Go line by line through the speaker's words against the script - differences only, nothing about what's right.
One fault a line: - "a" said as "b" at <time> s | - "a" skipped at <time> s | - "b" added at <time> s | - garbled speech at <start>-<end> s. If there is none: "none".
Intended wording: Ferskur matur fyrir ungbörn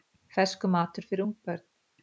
none